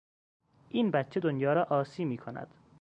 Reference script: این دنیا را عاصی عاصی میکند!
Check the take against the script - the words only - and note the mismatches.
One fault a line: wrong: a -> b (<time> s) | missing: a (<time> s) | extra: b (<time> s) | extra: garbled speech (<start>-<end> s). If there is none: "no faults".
extra: بچه (0.9 s)
missing: عاصی (2.1 s)